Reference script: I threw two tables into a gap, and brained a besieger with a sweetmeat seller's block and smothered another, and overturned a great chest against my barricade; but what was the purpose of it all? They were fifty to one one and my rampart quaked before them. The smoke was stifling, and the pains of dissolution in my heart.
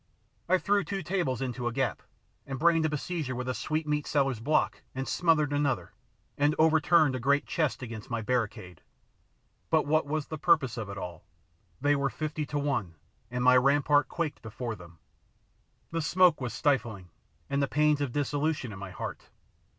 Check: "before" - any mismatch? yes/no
no